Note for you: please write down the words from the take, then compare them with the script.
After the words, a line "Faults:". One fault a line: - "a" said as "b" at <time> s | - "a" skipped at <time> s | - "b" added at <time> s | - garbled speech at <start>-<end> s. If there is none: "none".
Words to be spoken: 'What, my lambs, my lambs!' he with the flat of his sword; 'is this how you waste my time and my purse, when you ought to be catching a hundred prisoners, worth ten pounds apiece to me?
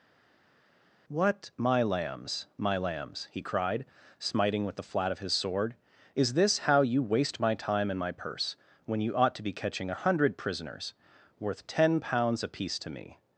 'What, my lambs, my lambs!' he cried, smiting with the flat of his sword; 'is this how you waste my time and my purse, when you ought to be catching a hundred prisoners, worth ten pounds apiece to me?
Faults:
- "cried smiting" added at 3.4 s